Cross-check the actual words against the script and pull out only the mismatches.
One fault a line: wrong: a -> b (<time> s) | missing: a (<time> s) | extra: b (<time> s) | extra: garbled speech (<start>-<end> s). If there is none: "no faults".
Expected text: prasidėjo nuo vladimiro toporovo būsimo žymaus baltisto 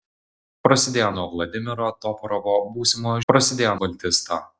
wrong: žymaus -> prasidėjo (3.3 s)